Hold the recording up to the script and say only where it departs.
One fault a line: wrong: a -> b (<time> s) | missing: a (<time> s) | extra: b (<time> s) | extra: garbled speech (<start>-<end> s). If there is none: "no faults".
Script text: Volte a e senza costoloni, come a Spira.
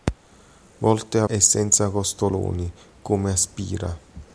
no faults